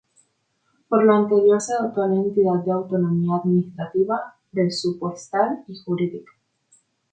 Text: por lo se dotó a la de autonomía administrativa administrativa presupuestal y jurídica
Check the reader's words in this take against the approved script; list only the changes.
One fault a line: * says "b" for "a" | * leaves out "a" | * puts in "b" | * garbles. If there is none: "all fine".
* puts in "anterior"
* puts in "entidad"
* leaves out "administrativa"